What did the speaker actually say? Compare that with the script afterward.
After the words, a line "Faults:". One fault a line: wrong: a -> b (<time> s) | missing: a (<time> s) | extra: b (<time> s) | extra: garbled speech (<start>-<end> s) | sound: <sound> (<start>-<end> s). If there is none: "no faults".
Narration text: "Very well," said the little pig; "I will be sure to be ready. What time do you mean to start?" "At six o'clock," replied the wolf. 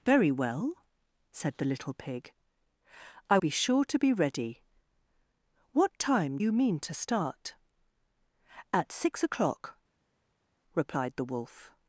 "Very well," said the little pig; "I be sure to be ready. What time you mean to start?" "At six o'clock," replied the wolf.
Faults:
missing: will (3.4 s)
missing: do (6.4 s)